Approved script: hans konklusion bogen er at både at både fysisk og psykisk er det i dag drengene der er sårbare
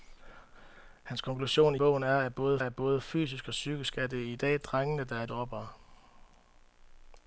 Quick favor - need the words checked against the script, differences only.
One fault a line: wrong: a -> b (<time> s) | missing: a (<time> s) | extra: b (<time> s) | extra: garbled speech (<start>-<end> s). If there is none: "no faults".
no faults